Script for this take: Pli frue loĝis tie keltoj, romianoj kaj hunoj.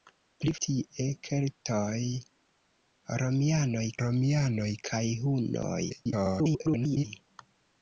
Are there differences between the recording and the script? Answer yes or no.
yes